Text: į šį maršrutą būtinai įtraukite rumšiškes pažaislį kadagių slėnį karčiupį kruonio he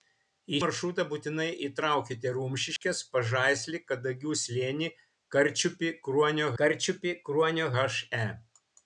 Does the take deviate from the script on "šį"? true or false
true